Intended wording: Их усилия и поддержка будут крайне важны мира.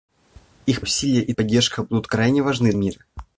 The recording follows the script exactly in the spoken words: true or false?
true